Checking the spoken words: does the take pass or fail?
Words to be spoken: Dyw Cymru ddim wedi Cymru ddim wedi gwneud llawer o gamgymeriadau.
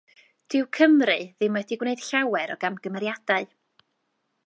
fail